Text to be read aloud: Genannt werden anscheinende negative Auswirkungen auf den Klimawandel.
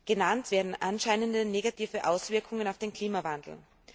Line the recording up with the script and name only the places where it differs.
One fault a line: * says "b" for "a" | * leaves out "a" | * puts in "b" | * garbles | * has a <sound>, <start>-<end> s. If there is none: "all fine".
all fine